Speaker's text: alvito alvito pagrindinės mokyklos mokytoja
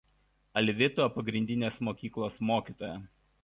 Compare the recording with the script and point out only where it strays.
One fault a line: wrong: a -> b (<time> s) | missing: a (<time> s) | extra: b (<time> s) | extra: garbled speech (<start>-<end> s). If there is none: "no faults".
missing: alvito (1.1 s)